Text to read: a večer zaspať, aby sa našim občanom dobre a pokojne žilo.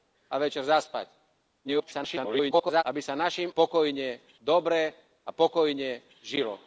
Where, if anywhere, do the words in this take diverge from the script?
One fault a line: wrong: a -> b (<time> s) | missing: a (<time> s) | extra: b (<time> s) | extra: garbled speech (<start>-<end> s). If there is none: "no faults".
extra: garbled speech (1.6-2.8 s)
wrong: občanom -> pokojne (3.5 s)